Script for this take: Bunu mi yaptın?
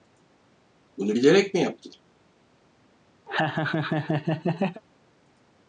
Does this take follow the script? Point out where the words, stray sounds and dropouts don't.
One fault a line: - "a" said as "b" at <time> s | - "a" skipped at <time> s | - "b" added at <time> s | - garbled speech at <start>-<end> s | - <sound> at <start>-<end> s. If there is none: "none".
- "bilerek" added at 1.1 s
- laugh at 3.3-4.8 s